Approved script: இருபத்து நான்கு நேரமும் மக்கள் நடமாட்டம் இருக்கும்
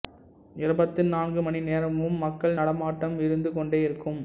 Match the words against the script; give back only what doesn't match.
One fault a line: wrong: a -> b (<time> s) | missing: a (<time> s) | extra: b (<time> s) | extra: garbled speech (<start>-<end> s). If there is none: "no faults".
extra: மணி (1.4 s)
extra: இருந்து கொண்டே (3.2 s)